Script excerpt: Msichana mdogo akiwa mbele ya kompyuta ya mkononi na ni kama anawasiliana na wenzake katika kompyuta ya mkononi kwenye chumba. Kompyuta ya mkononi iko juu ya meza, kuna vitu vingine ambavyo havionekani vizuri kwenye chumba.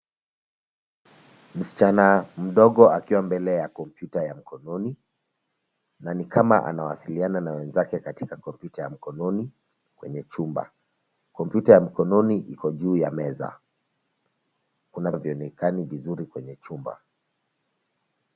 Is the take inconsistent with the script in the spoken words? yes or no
yes